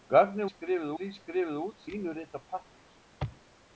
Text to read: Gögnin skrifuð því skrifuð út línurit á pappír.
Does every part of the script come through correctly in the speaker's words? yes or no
yes